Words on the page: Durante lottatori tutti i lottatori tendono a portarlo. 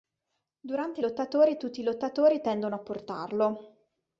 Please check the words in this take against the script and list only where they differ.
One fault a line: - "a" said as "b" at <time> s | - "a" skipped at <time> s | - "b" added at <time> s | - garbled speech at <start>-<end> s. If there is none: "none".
none